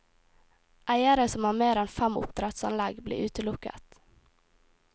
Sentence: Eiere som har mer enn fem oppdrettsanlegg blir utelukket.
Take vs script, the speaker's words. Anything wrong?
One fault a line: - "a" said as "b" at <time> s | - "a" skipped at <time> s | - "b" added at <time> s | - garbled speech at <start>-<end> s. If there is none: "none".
none